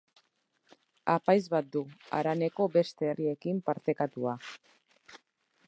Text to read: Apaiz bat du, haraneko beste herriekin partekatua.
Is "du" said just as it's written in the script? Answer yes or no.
yes